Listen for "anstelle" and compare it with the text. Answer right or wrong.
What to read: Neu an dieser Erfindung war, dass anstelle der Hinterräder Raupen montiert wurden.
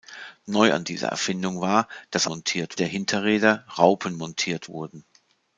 wrong